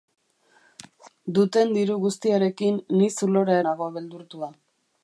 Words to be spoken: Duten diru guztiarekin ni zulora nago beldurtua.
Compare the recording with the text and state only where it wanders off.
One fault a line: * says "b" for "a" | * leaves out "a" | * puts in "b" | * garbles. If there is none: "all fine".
all fine